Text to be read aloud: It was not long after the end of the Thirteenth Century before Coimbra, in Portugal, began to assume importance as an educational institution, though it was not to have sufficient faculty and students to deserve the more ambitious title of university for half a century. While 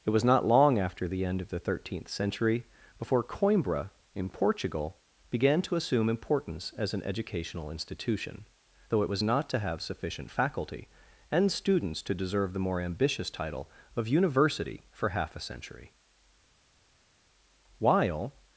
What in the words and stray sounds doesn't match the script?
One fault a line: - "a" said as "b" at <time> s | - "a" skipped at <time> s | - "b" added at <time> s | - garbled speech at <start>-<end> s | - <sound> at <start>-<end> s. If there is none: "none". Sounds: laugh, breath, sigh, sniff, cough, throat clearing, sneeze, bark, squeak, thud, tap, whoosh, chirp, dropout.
none